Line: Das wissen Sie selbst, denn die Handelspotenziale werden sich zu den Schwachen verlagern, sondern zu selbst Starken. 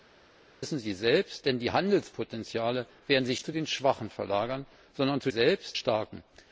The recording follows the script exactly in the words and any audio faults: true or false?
true